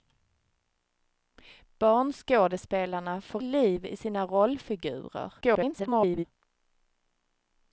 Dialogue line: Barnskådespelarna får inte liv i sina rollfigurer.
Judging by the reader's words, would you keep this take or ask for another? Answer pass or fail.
fail